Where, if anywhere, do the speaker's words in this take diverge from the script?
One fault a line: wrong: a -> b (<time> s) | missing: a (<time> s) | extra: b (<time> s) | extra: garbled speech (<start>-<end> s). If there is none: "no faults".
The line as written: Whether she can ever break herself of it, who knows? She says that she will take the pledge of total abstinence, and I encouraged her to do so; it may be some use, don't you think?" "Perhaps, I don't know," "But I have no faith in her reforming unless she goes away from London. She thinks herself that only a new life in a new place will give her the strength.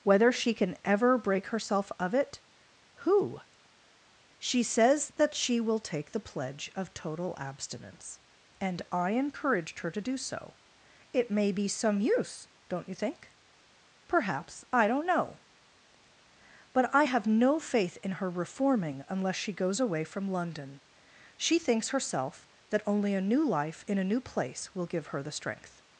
missing: knows (3.4 s)